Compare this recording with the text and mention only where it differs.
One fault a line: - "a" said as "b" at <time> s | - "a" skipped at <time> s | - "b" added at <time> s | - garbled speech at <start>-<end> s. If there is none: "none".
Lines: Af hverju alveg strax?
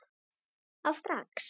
- "hverju alveg" skipped at 1.0 s